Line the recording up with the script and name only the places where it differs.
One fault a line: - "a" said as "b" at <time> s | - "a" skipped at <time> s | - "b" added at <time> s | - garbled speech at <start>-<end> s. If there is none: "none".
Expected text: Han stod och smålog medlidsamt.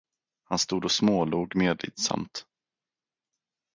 none